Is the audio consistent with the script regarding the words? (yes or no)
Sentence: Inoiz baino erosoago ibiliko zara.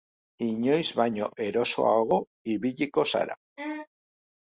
yes